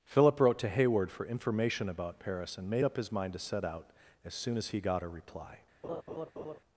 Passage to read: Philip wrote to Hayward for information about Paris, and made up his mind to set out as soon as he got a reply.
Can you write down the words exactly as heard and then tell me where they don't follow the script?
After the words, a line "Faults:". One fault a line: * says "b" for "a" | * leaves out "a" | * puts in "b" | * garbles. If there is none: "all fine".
Philip wrote to Hayward for information about Paris, and made up his mind to set out as soon as he got a reply.
Faults:
all fine